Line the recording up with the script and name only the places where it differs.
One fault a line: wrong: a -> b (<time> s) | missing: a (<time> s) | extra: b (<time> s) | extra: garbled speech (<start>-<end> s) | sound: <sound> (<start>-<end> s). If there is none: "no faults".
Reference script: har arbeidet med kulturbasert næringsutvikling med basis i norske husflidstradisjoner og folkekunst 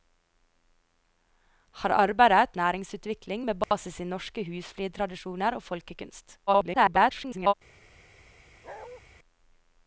missing: med kulturbasert (2.6 s)
sound: dropout (3.6-3.7 s)
extra: garbled speech (6.5-7.5 s)
sound: bark (8.6-9.0 s)